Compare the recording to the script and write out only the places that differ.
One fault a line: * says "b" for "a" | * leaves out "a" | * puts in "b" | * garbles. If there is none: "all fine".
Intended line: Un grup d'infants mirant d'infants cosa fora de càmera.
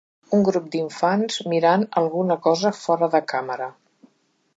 * says "alguna" for "d'infants"